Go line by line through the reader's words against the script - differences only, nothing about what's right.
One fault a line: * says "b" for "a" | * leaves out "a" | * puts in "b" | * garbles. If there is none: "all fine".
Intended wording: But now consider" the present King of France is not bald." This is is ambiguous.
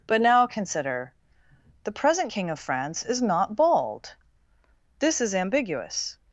* leaves out "is"